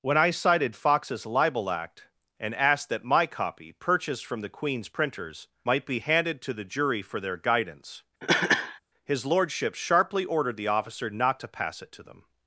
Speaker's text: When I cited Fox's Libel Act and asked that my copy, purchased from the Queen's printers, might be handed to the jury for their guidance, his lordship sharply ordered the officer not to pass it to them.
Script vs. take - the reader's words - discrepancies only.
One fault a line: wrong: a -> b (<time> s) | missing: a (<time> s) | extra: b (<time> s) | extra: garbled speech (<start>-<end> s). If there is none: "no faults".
no faults